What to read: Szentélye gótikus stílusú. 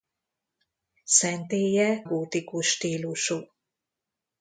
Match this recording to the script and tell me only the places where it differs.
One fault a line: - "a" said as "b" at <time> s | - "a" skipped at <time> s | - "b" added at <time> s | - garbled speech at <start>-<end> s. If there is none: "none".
none